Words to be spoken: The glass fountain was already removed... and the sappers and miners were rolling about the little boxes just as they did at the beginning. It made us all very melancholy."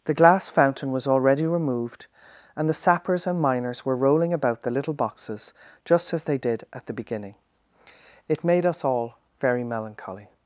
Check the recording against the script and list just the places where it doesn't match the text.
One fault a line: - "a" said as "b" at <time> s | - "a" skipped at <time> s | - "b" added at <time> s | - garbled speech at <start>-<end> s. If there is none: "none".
none